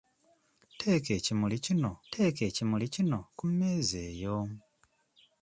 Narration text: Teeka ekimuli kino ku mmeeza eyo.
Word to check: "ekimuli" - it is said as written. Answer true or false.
true